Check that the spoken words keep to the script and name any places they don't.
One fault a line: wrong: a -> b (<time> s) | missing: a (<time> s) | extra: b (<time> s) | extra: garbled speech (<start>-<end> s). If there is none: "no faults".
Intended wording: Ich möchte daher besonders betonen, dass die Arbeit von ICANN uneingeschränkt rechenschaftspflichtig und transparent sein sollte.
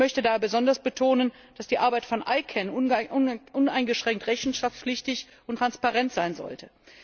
no faults